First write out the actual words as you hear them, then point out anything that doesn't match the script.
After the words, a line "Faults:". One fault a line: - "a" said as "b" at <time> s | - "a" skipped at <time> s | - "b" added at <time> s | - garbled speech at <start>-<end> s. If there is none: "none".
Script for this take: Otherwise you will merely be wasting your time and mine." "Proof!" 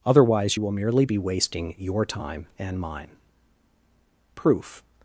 Otherwise you will merely be wasting your time and mine." "Proof!"
Faults:
none